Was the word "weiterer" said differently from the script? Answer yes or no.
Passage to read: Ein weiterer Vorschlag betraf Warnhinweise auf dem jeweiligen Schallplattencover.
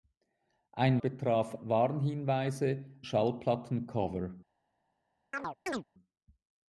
yes